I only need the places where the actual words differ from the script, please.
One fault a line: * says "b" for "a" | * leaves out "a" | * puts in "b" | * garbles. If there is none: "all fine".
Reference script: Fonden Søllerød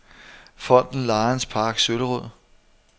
* puts in "Lions Park"